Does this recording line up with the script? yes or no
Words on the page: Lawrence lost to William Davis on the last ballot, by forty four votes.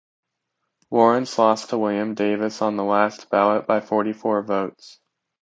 yes